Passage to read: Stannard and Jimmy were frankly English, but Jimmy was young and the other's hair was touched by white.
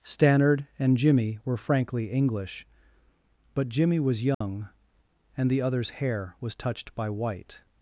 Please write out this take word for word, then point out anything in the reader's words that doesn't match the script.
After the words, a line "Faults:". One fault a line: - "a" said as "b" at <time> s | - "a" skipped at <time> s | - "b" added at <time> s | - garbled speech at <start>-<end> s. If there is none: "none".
Stannard and Jimmy were frankly English, but Jimmy was young and the other's hair was touched by white.
Faults:
none